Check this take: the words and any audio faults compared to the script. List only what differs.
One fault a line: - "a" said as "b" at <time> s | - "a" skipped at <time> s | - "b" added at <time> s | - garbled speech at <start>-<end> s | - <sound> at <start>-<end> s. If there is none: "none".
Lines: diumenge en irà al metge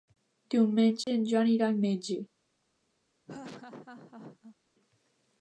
- dropout at 1.0-1.1 s
- "joan" added at 1.3 s
- laugh at 3.3-4.6 s